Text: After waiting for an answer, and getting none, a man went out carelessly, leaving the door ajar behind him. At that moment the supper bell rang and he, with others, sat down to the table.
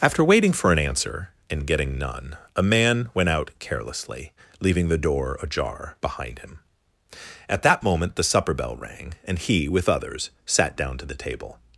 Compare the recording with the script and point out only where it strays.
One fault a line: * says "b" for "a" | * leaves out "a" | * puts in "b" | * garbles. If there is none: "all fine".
all fine